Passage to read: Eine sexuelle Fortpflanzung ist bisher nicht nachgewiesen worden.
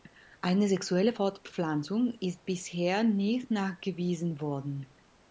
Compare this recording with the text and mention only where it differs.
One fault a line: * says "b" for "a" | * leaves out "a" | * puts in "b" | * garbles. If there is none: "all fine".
all fine